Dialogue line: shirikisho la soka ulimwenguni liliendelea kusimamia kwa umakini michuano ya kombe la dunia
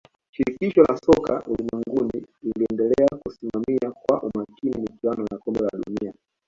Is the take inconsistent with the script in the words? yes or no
no